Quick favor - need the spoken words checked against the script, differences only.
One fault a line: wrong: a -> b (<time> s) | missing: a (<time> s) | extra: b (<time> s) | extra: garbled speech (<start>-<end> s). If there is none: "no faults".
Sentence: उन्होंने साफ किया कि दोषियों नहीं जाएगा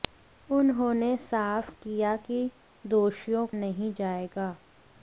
no faults